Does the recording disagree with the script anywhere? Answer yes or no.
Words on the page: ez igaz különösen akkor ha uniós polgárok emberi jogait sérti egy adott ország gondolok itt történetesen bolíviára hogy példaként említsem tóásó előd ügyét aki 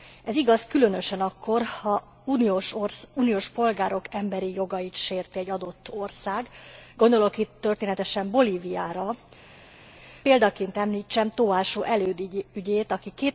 yes